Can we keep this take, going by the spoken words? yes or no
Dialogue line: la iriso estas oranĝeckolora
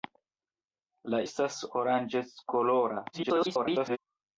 no